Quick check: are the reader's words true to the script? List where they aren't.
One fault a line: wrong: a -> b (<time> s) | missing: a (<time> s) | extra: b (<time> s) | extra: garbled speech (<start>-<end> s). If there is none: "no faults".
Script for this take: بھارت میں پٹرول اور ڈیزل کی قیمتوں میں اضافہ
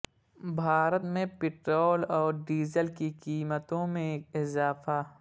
no faults